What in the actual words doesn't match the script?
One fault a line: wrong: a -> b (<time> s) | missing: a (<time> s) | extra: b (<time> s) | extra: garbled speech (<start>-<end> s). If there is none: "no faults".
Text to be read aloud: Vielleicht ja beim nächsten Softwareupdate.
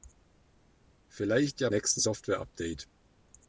missing: beim (1.7 s)